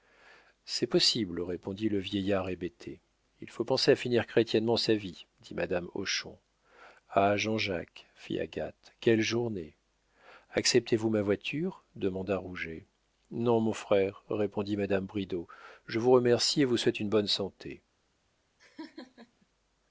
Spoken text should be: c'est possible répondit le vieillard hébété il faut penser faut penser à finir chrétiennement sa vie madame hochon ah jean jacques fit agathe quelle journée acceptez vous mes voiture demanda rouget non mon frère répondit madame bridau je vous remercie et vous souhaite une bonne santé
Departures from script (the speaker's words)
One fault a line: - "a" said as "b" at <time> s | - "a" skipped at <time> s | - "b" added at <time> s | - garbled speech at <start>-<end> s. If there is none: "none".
- "faut penser" skipped at 3.9 s
- "dit" added at 5.4 s
- "mes" said as "ma" at 11.1 s